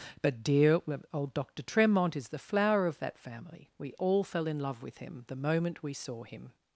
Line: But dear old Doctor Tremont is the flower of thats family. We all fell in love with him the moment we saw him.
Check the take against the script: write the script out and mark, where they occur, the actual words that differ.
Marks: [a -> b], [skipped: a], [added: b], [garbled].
But dear old Doctor Tremont is the flower of [thats -> that] family. We all fell in love with him the moment we saw him.